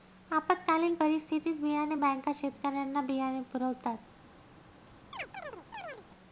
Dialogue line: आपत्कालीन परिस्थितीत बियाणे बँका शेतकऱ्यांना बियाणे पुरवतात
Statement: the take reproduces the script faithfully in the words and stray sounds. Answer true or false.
false